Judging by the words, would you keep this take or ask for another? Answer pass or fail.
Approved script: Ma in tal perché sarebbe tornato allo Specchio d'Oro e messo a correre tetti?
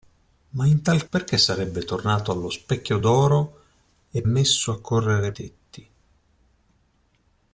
pass